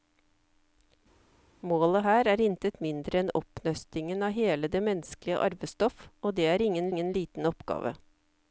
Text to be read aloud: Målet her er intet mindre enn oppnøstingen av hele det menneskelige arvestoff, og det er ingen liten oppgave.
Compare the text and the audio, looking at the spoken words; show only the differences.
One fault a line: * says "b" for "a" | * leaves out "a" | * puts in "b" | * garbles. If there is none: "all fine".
* puts in "ingen"